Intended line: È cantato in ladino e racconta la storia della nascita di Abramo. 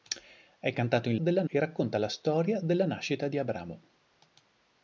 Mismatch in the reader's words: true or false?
true